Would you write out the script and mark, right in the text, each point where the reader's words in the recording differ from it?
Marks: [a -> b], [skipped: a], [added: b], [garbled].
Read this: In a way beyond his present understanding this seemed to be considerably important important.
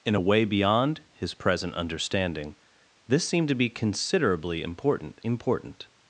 In a way beyond his present understanding this seemed to be considerably important important.